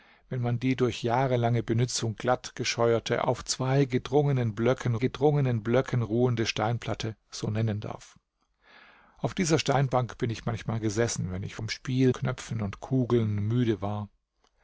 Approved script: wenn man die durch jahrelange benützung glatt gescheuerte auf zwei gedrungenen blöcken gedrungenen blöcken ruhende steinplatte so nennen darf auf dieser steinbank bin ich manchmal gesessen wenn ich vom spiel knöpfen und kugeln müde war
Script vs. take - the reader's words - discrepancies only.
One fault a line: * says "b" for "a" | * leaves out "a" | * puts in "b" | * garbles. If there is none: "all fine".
all fine